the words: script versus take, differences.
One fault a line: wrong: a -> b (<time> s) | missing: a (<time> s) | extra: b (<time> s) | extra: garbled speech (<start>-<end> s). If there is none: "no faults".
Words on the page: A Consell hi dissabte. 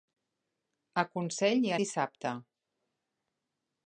no faults